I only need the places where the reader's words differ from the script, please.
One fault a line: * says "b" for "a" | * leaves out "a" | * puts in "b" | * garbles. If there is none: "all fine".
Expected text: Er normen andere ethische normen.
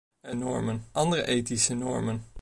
all fine